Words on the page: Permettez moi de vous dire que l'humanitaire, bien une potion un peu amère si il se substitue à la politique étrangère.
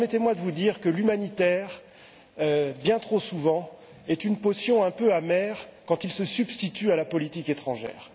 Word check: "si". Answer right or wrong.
wrong